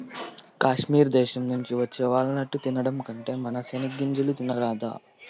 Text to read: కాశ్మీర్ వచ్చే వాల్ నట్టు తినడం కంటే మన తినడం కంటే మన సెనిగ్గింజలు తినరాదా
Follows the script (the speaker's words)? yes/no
no